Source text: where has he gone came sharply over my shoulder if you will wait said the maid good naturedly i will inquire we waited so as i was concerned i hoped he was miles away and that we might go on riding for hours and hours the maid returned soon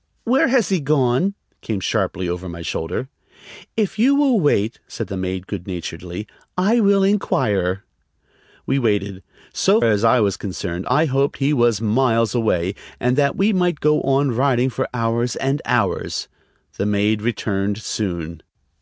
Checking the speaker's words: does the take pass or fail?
pass